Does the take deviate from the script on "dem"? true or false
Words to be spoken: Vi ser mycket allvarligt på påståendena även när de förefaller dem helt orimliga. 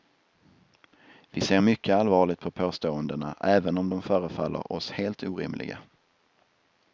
true